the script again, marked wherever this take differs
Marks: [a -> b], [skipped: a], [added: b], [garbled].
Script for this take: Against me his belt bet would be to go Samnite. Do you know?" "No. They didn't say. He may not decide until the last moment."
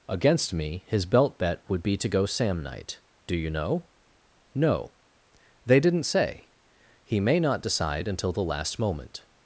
Against me his belt bet would be to go Samnite. Do you know?" "No. They didn't say. He may not decide until the last moment."